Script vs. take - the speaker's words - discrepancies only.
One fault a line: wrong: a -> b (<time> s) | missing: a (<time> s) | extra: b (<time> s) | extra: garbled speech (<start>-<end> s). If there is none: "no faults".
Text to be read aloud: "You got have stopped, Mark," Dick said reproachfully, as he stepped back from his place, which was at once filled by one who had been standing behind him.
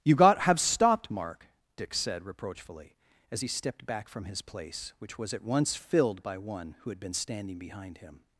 no faults